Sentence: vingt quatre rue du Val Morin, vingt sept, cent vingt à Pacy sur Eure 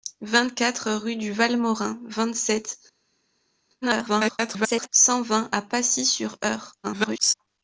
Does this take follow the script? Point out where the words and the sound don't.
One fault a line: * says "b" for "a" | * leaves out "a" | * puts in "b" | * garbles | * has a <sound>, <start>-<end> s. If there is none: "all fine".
* garbles
* garbles